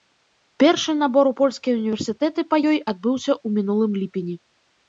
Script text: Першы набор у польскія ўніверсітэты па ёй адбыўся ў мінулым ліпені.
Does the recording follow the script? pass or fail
pass